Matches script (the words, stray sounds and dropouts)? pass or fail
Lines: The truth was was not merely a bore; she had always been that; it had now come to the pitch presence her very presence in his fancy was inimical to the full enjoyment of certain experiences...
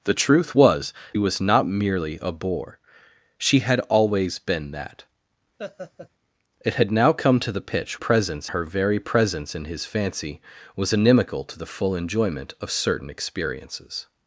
fail